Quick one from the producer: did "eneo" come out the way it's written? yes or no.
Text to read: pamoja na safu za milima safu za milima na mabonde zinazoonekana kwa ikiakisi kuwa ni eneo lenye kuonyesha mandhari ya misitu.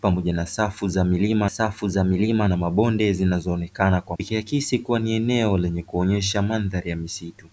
yes